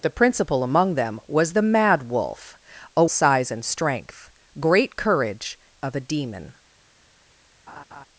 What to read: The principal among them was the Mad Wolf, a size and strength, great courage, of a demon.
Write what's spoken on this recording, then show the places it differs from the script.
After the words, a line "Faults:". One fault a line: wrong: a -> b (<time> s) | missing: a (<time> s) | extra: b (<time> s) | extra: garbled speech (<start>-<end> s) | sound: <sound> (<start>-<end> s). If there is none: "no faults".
The principal among them was the Mad Wolf, a size and strength, great courage, of a demon.
Faults:
sound: laugh (7.7-8.1 s)